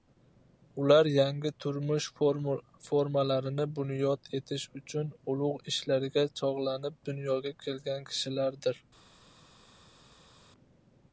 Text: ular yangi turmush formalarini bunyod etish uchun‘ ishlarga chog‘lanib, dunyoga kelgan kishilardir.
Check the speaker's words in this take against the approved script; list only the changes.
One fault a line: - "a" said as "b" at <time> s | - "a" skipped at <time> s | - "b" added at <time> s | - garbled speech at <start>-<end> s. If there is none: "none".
- "ulug" added at 5.3 s